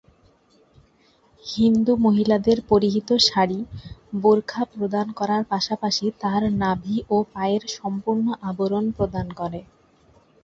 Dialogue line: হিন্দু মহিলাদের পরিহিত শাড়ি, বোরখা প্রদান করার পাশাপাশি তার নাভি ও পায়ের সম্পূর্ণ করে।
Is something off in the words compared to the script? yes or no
yes